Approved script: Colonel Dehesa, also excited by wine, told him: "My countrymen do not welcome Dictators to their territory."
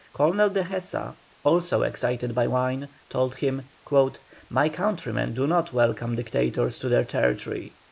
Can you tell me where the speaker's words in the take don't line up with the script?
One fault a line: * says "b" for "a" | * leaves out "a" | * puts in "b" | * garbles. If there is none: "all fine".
all fine